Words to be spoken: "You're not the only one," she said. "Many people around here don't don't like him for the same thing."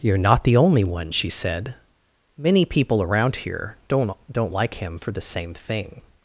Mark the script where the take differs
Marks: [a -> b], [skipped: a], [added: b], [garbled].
"You're not the only one," she said. "Many people around here don't don't like him for the same thing."